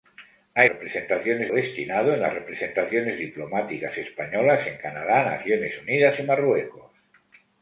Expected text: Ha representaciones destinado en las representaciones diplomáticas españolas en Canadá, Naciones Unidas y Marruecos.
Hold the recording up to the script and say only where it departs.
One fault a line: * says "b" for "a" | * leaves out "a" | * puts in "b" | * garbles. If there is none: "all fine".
all fine